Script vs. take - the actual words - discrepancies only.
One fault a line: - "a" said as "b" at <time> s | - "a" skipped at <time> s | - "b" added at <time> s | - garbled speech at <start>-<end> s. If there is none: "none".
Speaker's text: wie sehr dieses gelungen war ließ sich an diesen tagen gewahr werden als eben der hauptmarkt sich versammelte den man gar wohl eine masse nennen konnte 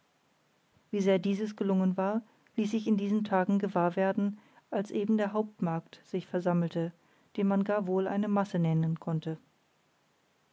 - "an" said as "in" at 2.9 s